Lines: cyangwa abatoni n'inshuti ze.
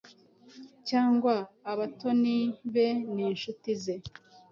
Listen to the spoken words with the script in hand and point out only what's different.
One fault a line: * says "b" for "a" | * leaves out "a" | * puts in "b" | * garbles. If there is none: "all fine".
* puts in "be"